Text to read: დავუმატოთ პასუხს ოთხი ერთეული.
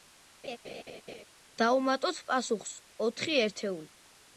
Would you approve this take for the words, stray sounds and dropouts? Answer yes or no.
no